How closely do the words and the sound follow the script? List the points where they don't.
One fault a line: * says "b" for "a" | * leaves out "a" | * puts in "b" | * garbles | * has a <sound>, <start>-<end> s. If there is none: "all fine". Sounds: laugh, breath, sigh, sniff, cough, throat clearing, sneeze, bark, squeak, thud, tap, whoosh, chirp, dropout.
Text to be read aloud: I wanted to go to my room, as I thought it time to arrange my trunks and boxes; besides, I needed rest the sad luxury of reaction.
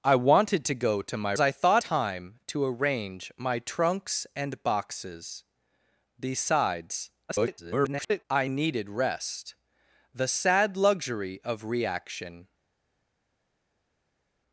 * leaves out "room as"
* leaves out "it"
* garbles